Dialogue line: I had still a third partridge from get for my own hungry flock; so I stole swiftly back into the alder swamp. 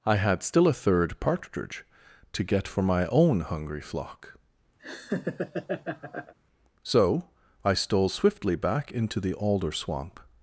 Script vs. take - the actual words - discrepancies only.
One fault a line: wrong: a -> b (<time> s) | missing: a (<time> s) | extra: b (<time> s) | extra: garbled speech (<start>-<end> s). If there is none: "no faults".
wrong: from -> to (2.3 s)